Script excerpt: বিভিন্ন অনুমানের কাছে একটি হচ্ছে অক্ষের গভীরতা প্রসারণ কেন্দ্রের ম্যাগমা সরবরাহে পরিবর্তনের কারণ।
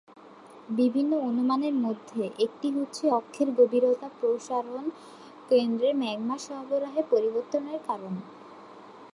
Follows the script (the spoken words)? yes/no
no